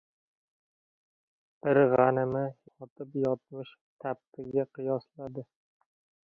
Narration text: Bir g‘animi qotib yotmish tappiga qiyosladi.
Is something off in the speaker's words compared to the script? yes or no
no